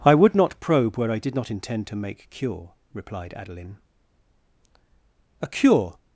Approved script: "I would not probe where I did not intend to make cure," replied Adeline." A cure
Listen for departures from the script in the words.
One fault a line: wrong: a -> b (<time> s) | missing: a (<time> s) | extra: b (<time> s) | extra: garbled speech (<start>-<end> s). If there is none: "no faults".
no faults